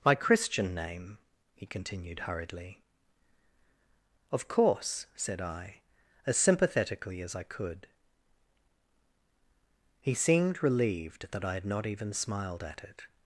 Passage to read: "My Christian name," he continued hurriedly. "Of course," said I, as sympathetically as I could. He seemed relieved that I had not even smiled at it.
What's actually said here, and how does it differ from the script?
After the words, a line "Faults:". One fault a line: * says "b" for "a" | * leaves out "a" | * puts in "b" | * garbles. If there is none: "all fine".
"My Christian name," he continued hurriedly. "Of course," said I, as sympathetically as I could. He seemed relieved that I had not even smiled at it.
Faults:
all fine